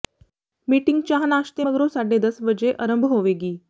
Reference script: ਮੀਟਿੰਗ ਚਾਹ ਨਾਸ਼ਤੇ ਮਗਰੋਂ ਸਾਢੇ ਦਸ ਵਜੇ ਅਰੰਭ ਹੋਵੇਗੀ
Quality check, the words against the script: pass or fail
pass